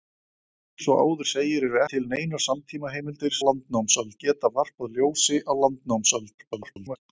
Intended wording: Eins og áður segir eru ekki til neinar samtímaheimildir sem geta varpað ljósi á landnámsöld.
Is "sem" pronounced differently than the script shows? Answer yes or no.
yes